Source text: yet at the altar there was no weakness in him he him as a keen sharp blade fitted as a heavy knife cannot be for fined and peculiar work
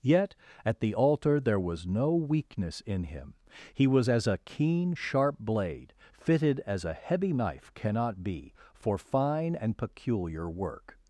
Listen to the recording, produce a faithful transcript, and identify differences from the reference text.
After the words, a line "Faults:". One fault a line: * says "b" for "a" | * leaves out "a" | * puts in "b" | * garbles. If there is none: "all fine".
yet at the altar there was no weakness in him he was as a keen sharp blade fitted as a heavy knife cannot be for fine and peculiar work
Faults:
* says "was" for "him"
* says "fine" for "fined"